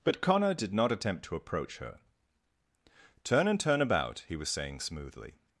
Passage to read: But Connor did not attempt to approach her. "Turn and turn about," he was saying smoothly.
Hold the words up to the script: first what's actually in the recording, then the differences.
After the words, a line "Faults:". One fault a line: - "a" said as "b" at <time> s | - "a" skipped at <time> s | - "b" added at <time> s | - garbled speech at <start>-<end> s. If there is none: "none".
But Connor did not attempt to approach her. "Turn and turn about," he was saying smoothly.
Faults:
none